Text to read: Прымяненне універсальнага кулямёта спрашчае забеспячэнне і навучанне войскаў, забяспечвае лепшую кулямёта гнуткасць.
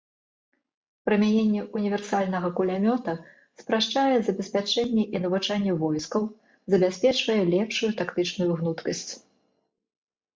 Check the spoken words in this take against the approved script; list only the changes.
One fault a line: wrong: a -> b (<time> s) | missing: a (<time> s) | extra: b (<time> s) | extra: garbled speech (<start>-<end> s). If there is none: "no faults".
wrong: кулямёта -> тактычную (8.0 s)